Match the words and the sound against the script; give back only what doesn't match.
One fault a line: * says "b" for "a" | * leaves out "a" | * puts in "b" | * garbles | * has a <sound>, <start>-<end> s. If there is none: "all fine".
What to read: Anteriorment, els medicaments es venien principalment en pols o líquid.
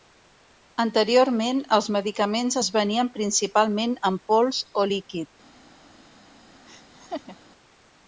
* has a laugh, 6.7-7.4 s